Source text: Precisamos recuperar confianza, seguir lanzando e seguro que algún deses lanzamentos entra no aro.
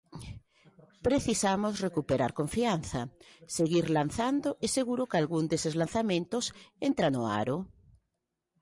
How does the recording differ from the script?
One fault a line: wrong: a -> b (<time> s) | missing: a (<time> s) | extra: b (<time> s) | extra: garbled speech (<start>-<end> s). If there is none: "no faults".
no faults